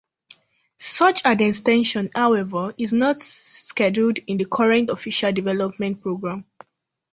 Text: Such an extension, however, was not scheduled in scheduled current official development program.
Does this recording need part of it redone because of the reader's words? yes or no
yes